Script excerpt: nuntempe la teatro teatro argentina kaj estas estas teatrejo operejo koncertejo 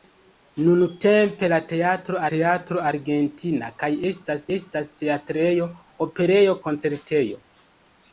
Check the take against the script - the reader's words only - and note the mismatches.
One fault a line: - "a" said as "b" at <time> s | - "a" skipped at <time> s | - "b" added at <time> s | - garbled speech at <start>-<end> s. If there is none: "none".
none